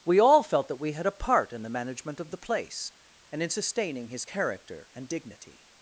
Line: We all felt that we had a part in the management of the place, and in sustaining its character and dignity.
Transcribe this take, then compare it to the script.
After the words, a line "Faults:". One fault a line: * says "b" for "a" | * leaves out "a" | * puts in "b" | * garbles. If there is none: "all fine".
We all felt that we had a part in the management of the place, and in sustaining his character and dignity.
Faults:
* says "his" for "its"